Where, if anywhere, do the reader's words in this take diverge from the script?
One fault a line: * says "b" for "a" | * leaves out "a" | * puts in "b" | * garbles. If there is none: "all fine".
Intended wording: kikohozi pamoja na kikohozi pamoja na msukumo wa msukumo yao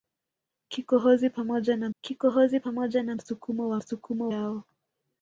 all fine